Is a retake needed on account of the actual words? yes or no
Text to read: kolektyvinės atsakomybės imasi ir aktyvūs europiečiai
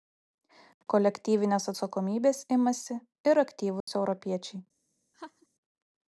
no